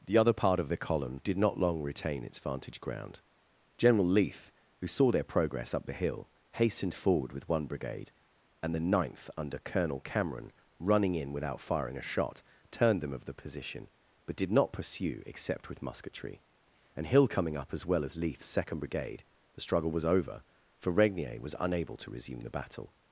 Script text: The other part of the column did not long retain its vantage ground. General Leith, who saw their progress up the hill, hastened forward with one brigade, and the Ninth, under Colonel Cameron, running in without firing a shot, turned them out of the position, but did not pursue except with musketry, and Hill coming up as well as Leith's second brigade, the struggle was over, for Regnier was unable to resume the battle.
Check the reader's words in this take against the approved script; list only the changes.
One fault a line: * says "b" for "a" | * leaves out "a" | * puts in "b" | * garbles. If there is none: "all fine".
* leaves out "out"